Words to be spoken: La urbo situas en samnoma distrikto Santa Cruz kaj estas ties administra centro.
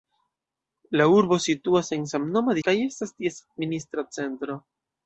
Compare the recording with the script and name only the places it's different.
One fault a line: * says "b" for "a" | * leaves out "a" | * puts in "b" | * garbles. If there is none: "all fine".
* leaves out "distrikto Santa Cruz"